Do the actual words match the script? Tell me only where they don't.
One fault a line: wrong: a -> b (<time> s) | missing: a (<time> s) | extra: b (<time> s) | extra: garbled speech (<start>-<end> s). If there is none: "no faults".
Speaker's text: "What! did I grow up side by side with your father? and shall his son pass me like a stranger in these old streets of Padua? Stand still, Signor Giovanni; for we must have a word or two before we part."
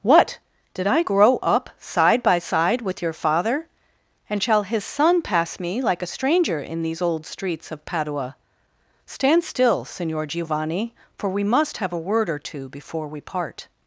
no faults